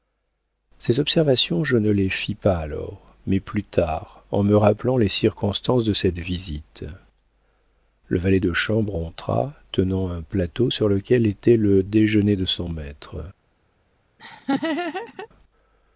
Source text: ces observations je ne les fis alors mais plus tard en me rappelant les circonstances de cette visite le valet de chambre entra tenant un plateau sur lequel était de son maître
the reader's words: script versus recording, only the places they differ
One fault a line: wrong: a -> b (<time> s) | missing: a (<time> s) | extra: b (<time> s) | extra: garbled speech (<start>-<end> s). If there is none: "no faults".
extra: pas (2.3 s)
extra: le déjeuner (11.6 s)